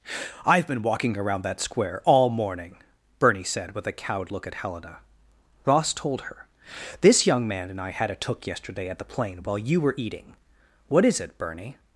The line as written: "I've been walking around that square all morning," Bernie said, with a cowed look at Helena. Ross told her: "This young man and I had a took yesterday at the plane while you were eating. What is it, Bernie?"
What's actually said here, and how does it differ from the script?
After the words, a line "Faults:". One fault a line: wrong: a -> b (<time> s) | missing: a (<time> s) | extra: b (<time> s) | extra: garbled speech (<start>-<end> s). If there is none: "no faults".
"I've been walking around that square all morning," Bernie said, with a cowed look at Helena. Ross told her: "This young man and I had a took yesterday at the plane while you were eating. What is it, Bernie?"
Faults:
no faults